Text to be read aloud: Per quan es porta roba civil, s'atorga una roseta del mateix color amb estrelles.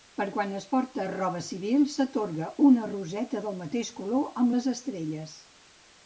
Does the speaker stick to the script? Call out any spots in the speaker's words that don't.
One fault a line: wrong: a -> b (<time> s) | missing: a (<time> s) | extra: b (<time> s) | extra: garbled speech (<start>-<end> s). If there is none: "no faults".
extra: les (4.6 s)